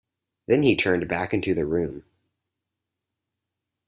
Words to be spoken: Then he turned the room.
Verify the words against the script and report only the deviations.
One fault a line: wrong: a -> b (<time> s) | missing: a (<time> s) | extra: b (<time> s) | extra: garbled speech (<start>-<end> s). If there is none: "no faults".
extra: back into (1.1 s)